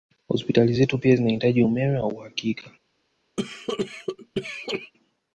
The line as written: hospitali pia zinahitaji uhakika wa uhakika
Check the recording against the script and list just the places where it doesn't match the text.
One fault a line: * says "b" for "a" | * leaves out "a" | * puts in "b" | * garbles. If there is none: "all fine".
* puts in "zetu"
* says "umeme" for "uhakika"